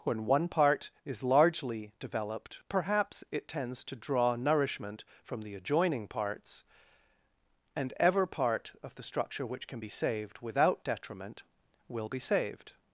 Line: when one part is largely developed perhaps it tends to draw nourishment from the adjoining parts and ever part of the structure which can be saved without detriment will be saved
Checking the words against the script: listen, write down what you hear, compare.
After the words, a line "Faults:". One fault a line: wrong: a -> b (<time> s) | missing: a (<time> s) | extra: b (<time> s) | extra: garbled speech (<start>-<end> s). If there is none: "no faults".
when one part is largely developed perhaps it tends to draw nourishment from the adjoining parts and ever part of the structure which can be saved without detriment will be saved
Faults:
no faults